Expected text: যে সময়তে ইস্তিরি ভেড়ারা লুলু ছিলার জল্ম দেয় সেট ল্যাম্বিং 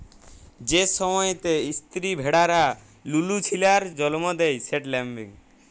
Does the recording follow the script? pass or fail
pass